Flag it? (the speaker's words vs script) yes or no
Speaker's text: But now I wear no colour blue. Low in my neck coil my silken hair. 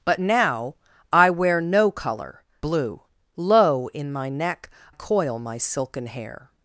no